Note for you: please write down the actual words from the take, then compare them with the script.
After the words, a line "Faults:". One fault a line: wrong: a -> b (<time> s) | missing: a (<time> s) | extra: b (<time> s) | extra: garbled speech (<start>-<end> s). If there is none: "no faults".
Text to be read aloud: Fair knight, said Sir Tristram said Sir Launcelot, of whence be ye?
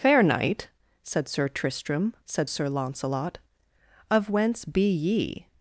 Fair knight, said Sir Tristram said Sir Launcelot, of whence be ye?
Faults:
no faults